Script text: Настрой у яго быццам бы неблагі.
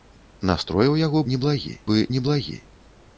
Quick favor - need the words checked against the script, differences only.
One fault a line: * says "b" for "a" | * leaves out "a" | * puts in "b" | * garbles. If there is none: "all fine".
* says "неблагі" for "быццам"